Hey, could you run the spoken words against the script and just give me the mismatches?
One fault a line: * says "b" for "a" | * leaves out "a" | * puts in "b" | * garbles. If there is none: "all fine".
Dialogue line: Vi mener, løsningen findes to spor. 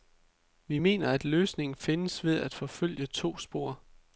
* puts in "at"
* puts in "ved at forfølge"